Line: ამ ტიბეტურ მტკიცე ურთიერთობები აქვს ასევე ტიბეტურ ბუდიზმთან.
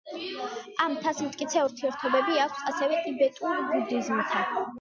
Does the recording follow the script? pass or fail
fail